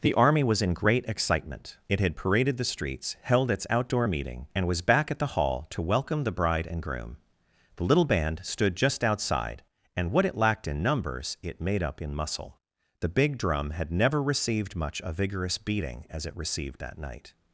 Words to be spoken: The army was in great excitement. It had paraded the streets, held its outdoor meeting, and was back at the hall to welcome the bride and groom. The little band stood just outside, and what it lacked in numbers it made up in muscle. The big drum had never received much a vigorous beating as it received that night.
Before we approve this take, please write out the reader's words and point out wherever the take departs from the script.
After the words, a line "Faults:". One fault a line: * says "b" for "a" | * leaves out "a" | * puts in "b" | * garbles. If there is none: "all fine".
The army was in great excitement. It had paraded the streets, held its outdoor meeting, and was back at the hall to welcome the bride and groom. The little band stood just outside, and what it lacked in numbers it made up in muscle. The big drum had never received much a vigorous beating as it received that night.
Faults:
all fine